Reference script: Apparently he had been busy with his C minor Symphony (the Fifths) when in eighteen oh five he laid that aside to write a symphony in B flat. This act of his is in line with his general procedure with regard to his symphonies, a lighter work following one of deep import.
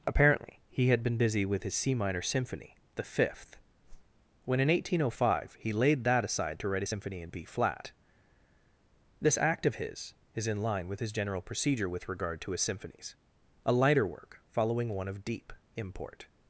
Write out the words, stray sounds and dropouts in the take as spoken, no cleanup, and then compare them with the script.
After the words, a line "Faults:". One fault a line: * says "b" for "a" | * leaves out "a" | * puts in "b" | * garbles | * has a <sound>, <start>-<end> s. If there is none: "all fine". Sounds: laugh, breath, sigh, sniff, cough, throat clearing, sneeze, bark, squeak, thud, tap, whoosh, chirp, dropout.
Apparently he had been busy with his C minor Symphony (the Fifth) when in eighteen oh five he laid that aside to write a symphony in B flat. This act of his is in line with his general procedure with regard to his symphonies, a lighter work following one of deep import.
Faults:
* says "Fifth" for "Fifths"
* has a whoosh, 3.8-4.2 s